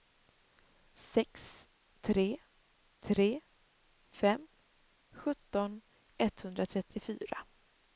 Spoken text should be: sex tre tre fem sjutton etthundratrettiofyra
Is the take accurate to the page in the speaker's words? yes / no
yes